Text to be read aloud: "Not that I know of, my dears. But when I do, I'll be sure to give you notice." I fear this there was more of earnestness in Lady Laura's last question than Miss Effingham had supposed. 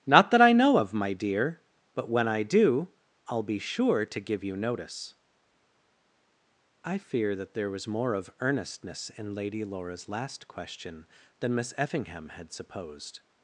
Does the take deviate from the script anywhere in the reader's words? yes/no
yes